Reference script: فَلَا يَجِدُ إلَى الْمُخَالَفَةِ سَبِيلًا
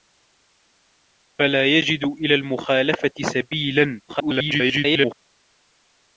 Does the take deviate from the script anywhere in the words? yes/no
yes